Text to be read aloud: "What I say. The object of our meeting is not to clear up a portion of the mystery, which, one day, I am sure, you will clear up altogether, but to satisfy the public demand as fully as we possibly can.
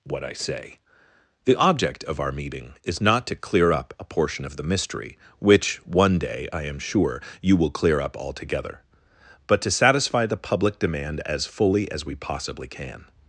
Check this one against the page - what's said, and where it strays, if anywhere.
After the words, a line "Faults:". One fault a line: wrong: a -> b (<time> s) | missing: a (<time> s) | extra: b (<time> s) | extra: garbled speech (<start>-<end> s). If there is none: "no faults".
"What I say. The object of our meeting is not to clear up a portion of the mystery, which, one day, I am sure, you will clear up altogether, but to satisfy the public demand as fully as we possibly can.
Faults:
no faults